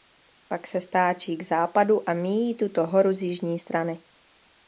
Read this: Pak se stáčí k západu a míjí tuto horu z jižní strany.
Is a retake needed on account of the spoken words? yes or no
no